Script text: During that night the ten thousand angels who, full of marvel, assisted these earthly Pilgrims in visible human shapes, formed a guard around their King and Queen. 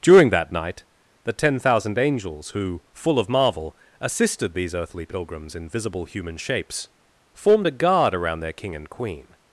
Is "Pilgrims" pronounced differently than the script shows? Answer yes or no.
no